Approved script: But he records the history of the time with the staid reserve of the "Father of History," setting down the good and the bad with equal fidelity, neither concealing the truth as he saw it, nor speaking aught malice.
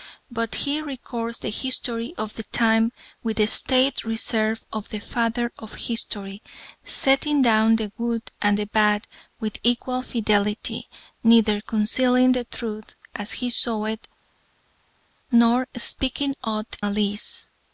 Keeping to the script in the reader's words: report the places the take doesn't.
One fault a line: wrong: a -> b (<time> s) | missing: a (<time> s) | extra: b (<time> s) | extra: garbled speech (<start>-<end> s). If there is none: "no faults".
no faults